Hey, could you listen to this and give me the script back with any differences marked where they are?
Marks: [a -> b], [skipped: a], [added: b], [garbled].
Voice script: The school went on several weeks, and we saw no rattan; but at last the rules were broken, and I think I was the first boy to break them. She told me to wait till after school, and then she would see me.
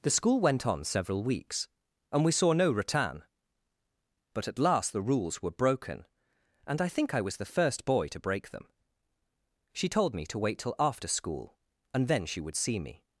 The school went on several weeks, and we saw no rattan; but at last the rules were broken, and I think I was the first boy to break them. She told me to wait till after school, and then she would see me.